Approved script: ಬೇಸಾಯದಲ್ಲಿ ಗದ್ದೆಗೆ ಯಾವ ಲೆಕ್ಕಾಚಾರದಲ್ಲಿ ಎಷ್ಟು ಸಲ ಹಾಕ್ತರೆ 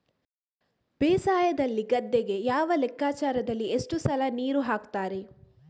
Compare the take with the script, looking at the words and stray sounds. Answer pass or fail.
fail